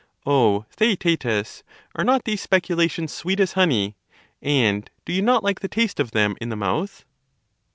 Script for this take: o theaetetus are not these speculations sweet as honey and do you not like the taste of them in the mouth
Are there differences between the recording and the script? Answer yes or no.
no